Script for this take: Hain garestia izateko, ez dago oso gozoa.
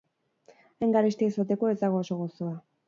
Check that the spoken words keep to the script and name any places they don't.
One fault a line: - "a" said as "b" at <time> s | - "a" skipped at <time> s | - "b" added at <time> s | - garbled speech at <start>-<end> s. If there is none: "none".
none